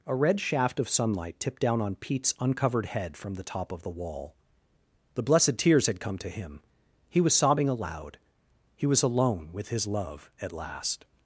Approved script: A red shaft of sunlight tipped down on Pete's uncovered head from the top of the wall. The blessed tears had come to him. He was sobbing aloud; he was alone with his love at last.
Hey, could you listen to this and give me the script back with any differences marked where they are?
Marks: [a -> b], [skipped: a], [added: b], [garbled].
A red shaft of sunlight tipped down on Pete's uncovered head from the top of the wall. The blessed tears had come to him. He was sobbing aloud; he was alone with his love at last.